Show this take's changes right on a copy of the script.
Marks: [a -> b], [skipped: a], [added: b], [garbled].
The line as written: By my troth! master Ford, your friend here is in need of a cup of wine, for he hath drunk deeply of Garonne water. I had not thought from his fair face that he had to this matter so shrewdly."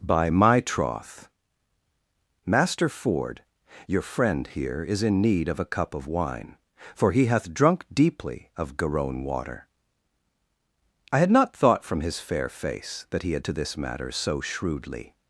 By my troth! master Ford, your friend here is in need of a cup of wine, for he hath drunk deeply of Garonne water. I had not thought from his fair face that he had to this matter so shrewdly."